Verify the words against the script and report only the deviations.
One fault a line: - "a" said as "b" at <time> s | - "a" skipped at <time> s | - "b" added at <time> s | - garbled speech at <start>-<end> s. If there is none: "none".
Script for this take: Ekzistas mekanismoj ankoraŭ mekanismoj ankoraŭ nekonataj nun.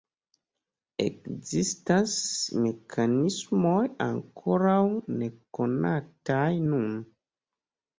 - "mekanismoj ankoraŭ" skipped at 4.8 s